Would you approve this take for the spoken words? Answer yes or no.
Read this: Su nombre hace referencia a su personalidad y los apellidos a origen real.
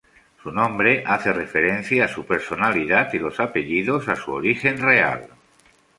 no